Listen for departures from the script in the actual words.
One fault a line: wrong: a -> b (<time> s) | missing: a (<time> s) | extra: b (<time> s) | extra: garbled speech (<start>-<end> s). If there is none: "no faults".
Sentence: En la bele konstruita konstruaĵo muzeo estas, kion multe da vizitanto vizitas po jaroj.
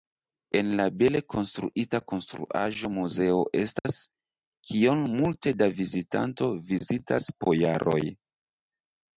no faults